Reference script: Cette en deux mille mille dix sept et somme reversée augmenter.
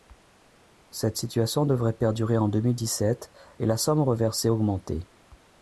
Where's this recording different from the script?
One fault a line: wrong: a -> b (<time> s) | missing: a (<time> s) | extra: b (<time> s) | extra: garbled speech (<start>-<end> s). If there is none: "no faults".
extra: situation devrait perdurer (1.2 s)
missing: mille (2.8 s)
extra: la (3.7 s)